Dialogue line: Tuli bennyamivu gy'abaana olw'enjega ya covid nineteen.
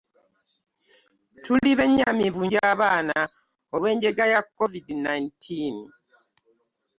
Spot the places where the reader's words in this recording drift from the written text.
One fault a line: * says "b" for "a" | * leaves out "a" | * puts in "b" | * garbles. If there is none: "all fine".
all fine